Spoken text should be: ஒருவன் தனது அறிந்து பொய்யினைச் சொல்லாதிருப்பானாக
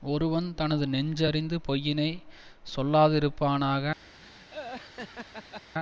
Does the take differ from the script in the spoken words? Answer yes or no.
yes